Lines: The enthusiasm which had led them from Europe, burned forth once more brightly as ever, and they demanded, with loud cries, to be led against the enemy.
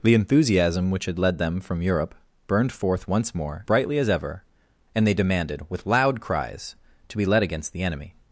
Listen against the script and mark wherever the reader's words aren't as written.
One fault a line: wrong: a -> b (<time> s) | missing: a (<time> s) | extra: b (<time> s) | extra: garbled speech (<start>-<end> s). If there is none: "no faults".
no faults